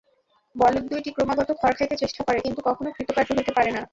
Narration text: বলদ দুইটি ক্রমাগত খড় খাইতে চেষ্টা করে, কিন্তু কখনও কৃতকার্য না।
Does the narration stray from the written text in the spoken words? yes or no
yes